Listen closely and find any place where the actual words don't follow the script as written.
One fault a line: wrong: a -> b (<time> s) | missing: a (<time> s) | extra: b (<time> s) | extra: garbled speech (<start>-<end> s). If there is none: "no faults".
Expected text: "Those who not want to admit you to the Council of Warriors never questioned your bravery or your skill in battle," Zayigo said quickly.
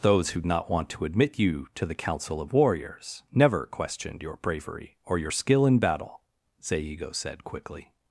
no faults